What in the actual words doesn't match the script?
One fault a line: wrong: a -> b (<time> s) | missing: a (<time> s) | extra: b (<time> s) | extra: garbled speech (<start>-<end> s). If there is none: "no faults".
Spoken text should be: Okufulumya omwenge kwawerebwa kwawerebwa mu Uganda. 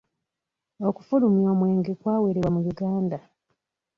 missing: kwawerebwa (2.5 s)